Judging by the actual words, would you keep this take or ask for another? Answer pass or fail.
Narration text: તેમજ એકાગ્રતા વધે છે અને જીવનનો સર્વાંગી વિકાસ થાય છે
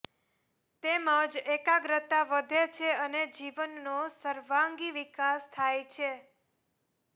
pass